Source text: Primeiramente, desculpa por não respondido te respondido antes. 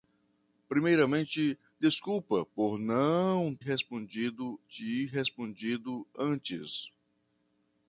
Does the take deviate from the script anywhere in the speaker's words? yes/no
no